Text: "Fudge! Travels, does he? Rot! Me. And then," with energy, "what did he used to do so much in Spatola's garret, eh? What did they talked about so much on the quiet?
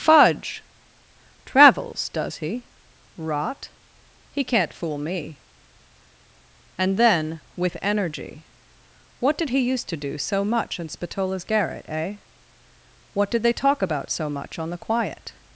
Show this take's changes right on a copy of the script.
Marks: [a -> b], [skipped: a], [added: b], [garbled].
"Fudge! Travels, does he? Rot! [added: He can't fool] Me. And then," with energy, "what did he used to do so much in Spatola's garret, eh? What did they [talked -> talk] about so much on the quiet?